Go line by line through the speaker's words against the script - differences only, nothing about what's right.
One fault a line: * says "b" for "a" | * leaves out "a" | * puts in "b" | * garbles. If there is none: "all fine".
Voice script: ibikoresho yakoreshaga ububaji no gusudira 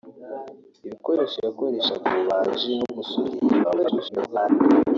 * garbles